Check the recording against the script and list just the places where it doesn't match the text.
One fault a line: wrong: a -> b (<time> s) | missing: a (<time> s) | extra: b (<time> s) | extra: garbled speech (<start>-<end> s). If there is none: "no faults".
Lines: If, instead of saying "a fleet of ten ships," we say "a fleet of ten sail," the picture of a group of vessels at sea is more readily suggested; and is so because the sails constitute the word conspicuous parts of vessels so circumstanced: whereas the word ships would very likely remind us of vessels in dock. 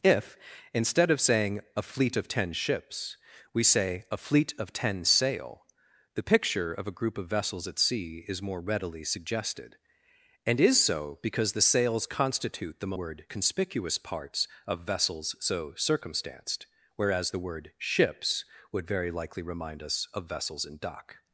no faults